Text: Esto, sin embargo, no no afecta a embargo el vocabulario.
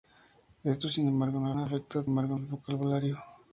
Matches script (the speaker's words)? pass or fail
pass